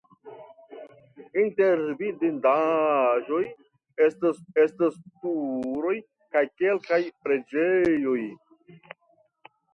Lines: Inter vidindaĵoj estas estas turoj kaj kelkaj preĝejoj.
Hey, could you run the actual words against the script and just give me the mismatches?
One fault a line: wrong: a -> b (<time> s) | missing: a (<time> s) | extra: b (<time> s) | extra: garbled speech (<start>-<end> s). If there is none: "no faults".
no faults